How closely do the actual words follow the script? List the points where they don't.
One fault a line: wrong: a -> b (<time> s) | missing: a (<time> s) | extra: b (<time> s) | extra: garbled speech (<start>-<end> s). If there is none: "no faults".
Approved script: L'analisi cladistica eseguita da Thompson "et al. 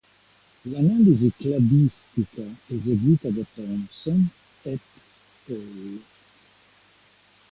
no faults